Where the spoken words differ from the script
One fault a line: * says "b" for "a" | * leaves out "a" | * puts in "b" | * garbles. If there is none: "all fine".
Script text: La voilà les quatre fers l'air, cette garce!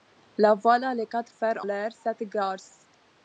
all fine